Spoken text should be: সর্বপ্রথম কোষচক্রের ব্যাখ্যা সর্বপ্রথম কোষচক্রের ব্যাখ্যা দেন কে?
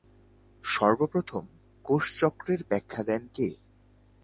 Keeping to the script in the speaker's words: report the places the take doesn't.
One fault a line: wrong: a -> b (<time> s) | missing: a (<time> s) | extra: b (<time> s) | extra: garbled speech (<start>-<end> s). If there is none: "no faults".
missing: সর্বপ্রথম কোষচক্রের ব্যাখ্যা (3.0 s)